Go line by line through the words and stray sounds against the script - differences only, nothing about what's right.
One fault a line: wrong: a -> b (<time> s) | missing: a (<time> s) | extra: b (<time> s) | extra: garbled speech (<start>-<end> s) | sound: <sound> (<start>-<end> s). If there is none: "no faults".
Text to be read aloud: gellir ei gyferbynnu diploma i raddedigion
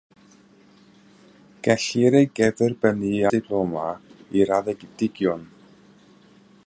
no faults